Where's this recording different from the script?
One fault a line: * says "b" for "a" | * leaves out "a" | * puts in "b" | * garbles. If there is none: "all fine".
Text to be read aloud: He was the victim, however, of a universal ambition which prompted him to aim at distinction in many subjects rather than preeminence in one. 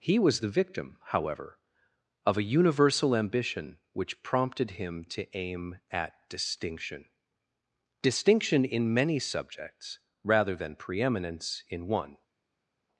* puts in "distinction"